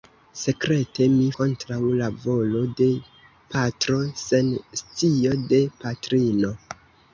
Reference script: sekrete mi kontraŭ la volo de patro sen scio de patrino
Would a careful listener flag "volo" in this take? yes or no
no